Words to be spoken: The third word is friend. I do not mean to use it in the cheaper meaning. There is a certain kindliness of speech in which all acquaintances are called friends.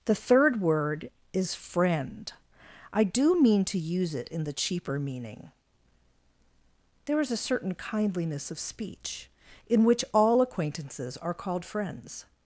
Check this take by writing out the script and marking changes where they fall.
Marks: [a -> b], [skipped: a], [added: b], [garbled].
The third word is friend. I do [skipped: not] mean to use it in the cheaper meaning. There is a certain kindliness of speech in which all acquaintances are called friends.